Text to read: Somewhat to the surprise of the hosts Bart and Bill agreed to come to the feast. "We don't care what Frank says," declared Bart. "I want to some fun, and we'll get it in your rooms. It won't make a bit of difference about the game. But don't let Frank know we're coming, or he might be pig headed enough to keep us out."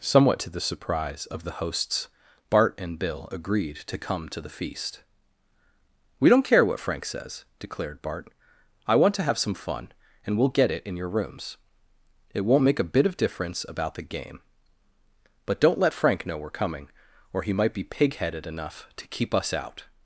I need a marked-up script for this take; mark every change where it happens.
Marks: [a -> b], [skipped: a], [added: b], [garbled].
Somewhat to the surprise of the hosts Bart and Bill agreed to come to the feast. "We don't care what Frank says," declared Bart. "I want to [added: have] some fun, and we'll get it in your rooms. It won't make a bit of difference about the game. But don't let Frank know we're coming, or he might be pig headed enough to keep us out."